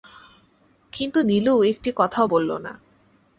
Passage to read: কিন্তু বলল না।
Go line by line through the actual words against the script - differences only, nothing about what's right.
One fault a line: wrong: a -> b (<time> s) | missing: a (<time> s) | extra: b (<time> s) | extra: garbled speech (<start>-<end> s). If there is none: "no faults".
extra: নীলু একটি কথাও (1.2 s)